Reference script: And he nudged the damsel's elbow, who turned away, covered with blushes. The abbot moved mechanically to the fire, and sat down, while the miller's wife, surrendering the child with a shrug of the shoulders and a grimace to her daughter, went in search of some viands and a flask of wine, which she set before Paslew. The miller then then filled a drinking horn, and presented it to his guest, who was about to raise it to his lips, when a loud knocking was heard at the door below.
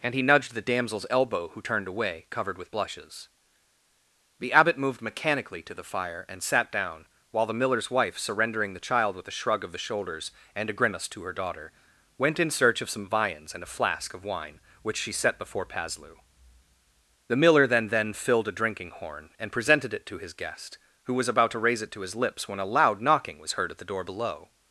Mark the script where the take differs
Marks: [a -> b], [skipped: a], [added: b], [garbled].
And he nudged the damsel's elbow, who turned away, covered with blushes. The abbot moved mechanically to the fire, and sat down, while the miller's wife, surrendering the child with a shrug of the shoulders and a grimace to her daughter, went in search of some viands and a flask of wine, which she set before Paslew. The miller then then filled a drinking horn, and presented it to his guest, who was about to raise it to his lips, when a loud knocking was heard at the door below.